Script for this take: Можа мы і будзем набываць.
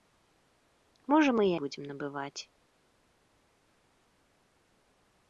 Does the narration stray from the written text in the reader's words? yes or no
no